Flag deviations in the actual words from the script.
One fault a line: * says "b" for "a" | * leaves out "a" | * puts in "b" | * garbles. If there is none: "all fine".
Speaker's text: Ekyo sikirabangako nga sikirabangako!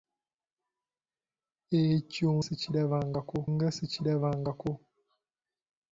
all fine